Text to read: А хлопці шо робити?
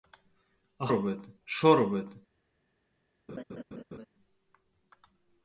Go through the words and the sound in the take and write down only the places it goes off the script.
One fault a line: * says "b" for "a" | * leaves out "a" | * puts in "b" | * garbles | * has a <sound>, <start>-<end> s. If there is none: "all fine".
* says "робити" for "хлопці"
* has a laugh, 3.3-4.1 s